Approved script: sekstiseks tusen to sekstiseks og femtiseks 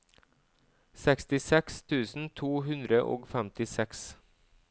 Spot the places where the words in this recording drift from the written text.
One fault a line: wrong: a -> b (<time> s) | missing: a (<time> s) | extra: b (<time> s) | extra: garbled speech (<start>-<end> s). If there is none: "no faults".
wrong: sekstiseks -> hundre (2.7 s)